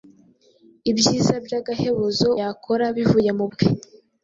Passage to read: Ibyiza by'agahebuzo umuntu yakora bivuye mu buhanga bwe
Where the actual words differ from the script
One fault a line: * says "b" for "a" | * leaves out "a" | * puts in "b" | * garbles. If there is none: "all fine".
* leaves out "umuntu"
* leaves out "buhanga"